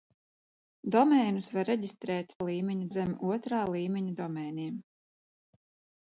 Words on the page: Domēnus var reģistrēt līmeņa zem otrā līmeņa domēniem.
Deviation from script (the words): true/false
false